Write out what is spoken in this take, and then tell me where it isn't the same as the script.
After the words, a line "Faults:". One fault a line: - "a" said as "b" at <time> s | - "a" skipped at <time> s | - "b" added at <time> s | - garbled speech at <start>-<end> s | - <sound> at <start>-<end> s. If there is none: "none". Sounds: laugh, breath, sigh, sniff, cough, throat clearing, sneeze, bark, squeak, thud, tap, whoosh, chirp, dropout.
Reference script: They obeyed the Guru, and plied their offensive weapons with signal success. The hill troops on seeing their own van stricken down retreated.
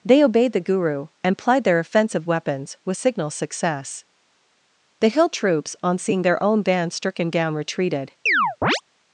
They obeyed the Guru, and plied their offensive weapons with signal success. The hill troops on seeing their own band stricken down retreated.
Faults:
- "van" said as "band" at 6.6 s
- chirp at 8.3-8.8 s